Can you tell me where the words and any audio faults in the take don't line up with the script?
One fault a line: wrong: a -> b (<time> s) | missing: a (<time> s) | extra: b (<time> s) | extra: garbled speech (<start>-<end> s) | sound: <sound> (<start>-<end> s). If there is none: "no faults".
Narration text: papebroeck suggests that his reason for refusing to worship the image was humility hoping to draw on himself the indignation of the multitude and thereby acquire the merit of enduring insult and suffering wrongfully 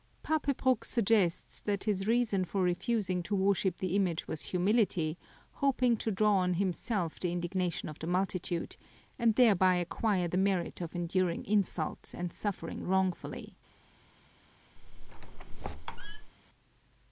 sound: squeak (14.8-16.3 s)